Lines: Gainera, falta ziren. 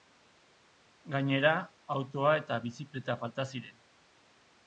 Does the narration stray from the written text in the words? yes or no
yes